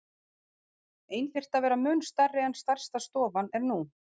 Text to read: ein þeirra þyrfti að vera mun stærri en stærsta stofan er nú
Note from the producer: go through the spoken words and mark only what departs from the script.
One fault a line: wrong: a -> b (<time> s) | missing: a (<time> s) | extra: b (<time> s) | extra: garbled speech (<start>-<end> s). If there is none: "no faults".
missing: þeirra (1.3 s)